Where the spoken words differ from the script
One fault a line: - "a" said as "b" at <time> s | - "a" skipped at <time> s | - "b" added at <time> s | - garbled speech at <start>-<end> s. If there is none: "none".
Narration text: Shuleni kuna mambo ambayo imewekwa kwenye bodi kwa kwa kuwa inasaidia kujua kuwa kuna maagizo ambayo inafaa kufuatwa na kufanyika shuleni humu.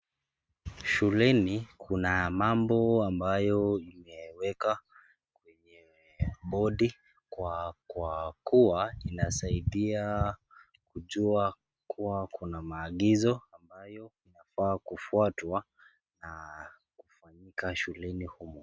none